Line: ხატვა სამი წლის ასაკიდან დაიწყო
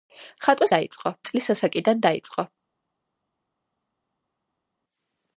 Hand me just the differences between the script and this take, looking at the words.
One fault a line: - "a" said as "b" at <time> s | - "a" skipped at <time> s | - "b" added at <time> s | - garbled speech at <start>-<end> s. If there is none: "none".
- "სამი" said as "დაიწყო" at 0.8 s